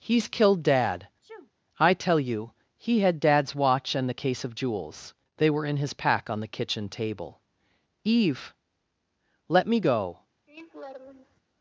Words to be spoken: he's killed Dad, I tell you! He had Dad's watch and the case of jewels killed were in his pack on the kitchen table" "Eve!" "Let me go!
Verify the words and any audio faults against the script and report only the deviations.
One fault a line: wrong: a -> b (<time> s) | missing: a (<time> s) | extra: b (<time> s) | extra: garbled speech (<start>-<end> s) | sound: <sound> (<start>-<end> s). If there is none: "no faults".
sound: sneeze (1.2-1.5 s)
wrong: killed -> they (5.4 s)
sound: laugh (10.5-11.4 s)